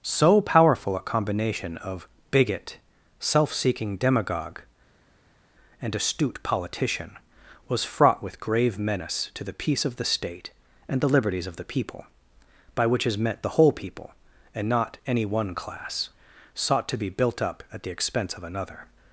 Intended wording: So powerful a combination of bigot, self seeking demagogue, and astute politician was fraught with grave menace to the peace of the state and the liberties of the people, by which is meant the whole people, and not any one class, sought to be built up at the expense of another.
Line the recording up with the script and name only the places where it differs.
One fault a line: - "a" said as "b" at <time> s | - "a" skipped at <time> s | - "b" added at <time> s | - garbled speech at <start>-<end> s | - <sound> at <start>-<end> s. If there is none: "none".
none